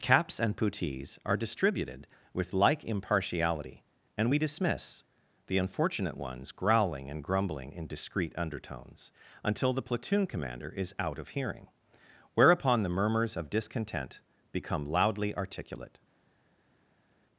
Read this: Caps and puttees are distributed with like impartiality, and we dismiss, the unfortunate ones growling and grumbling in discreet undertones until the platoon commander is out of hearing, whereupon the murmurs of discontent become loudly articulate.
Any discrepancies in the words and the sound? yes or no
no